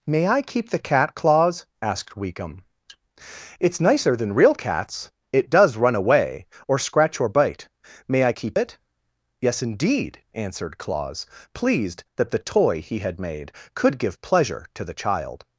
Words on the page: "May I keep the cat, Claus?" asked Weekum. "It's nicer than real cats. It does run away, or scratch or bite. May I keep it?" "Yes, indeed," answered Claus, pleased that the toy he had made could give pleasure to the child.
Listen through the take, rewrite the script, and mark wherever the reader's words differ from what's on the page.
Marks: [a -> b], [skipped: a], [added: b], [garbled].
"May I keep the cat, Claus?" asked Weekum. "It's nicer than real cats. It does run away, or scratch or bite. May I keep it?" "Yes, indeed," answered Claus, pleased that the toy he had made could give pleasure to the child.